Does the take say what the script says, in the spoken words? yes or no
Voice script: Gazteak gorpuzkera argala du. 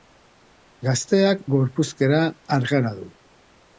yes